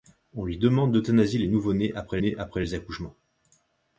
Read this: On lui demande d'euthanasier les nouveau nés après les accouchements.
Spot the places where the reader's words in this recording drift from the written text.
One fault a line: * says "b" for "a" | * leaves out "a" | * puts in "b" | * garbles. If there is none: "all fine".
* puts in "nés après"